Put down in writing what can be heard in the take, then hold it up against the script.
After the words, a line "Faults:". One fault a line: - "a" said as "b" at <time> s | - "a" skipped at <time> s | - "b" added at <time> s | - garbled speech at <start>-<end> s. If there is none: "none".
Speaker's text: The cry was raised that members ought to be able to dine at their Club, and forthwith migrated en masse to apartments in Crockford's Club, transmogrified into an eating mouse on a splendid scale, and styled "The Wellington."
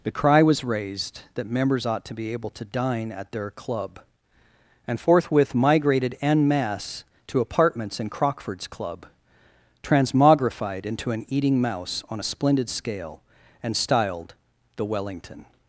The cry was raised that members ought to be able to dine at their Club, and forthwith migrated en masse to apartments in Crockford's Club, transmogrified into an eating mouse on a splendid scale, and styled "The Wellington."
Faults:
none